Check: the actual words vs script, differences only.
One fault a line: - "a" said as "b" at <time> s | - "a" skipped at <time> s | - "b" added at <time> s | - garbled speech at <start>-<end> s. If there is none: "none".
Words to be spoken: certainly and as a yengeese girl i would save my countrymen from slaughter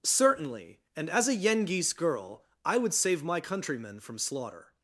none